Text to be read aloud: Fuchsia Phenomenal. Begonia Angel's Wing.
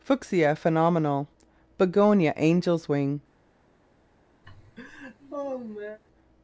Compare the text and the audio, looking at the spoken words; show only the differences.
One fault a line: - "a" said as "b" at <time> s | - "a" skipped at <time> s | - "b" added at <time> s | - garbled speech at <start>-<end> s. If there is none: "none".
none